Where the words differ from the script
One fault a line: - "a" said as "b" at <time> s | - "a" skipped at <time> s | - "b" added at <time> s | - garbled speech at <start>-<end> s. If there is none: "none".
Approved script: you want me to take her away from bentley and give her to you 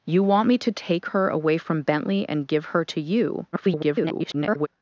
- garbled speech at 3.5-4.7 s